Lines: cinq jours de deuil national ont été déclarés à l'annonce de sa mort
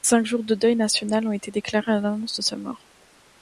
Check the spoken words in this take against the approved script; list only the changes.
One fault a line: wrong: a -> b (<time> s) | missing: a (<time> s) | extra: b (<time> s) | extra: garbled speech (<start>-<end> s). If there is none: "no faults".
no faults